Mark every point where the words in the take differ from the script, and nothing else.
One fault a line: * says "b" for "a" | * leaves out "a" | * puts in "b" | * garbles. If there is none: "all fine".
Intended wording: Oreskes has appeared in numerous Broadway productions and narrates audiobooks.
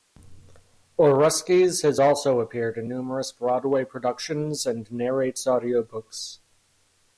* puts in "also"